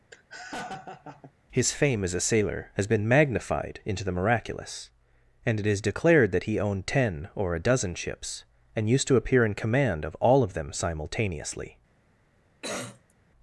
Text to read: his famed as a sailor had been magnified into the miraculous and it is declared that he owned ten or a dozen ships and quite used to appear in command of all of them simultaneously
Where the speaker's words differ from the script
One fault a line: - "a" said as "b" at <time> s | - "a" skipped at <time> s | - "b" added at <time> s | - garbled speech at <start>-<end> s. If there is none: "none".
- "famed" said as "fame" at 1.7 s
- "had" said as "has" at 2.7 s
- "quite" skipped at 8.9 s